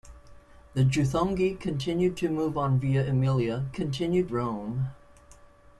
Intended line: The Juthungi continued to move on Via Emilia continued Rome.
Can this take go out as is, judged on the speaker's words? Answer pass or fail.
pass